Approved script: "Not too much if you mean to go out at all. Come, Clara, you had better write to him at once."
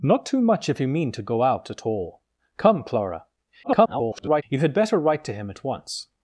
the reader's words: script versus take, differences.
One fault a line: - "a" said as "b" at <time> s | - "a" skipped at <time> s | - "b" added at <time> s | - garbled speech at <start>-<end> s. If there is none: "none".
- garbled speech at 3.6-4.4 s